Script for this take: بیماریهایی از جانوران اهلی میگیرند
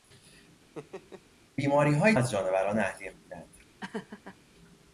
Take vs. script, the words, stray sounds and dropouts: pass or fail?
fail